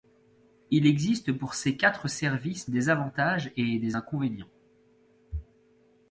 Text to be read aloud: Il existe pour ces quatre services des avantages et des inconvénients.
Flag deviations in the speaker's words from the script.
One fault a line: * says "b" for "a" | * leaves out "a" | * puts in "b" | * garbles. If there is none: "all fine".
all fine